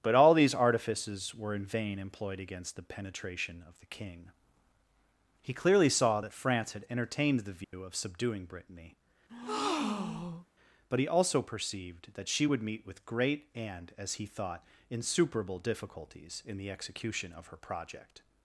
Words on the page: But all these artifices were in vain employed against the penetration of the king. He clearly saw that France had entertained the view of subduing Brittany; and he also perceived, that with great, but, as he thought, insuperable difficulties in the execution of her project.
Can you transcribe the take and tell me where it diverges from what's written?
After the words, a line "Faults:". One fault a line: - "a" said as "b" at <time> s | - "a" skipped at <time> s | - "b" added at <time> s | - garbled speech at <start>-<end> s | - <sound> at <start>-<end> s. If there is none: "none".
But all these artifices were in vain employed against the penetration of the king. He clearly saw that France had entertained the view of subduing Brittany; but he also perceived, that she would meet with great, and, as he thought, insuperable difficulties in the execution of her project.
Faults:
- dropout at 7.6-7.7 s
- breath at 9.3-10.5 s
- "and" said as "but" at 10.9 s
- "she would meet" added at 12.3 s
- "but" said as "and" at 13.6 s